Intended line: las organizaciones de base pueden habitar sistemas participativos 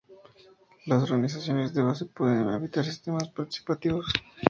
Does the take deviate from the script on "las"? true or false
false